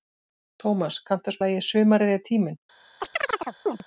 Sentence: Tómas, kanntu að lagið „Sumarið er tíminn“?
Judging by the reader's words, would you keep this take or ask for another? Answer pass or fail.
pass